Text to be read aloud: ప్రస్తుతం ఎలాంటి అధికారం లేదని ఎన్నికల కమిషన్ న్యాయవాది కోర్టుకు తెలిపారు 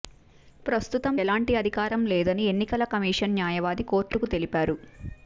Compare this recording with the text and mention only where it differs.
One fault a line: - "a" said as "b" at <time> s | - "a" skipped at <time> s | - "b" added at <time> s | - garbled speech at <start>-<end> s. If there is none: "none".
none